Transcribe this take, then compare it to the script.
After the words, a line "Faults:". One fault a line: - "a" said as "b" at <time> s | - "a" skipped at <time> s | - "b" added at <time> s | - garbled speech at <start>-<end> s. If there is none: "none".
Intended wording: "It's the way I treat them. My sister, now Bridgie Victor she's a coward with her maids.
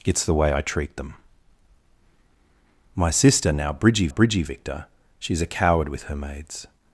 "It's the way I treat them. My sister, now Bridgie Bridgie Victor she's a coward with her maids.
Faults:
- "Bridgie" added at 4.1 s